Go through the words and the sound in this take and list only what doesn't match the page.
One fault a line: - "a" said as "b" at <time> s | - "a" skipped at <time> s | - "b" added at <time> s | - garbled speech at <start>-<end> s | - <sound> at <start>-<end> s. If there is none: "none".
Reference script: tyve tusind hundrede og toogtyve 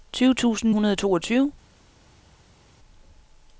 none